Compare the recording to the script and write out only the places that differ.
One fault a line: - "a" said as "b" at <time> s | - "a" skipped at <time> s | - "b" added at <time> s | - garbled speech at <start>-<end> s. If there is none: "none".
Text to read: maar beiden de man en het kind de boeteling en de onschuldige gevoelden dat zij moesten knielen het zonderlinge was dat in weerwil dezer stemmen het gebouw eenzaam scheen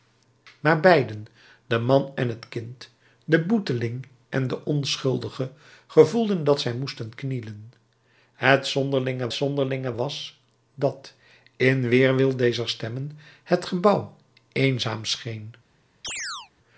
- "zonderlinge" added at 9.3 s